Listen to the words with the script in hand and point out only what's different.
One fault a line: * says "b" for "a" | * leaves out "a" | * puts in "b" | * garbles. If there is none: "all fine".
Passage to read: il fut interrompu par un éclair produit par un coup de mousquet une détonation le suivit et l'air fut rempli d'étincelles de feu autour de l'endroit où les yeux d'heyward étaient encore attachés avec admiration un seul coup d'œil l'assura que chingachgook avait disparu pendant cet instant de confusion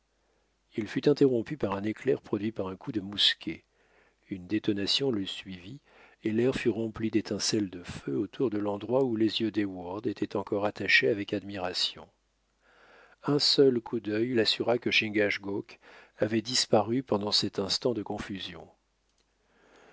all fine